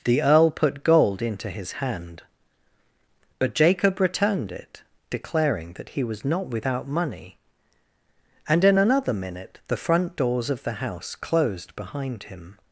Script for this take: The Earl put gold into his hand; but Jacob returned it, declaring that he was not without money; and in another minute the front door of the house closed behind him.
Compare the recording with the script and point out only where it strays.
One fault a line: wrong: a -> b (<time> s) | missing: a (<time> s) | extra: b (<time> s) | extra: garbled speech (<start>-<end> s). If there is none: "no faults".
wrong: door -> doors (10.2 s)